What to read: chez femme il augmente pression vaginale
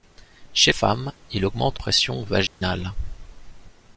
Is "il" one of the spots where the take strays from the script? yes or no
no